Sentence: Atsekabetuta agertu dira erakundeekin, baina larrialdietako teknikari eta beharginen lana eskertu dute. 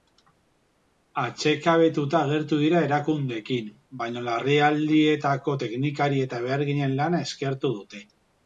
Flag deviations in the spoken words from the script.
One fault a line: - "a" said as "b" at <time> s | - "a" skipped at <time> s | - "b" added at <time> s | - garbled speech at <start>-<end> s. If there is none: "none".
none